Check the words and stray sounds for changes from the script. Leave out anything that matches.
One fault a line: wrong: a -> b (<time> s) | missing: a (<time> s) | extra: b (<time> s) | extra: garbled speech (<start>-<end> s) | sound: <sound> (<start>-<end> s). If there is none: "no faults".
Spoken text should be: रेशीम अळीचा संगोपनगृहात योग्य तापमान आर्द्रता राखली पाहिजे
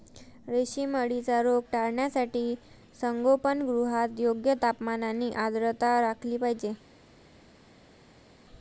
extra: रोग टाळण्यासाठी (1.4 s)
extra: आणि (5.0 s)